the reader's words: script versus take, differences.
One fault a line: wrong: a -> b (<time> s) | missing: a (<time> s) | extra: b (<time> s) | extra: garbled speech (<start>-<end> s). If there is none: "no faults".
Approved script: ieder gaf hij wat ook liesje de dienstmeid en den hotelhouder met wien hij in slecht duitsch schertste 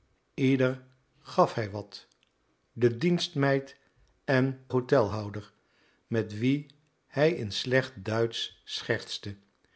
missing: ook liesje (2.1 s)
missing: den (4.7 s)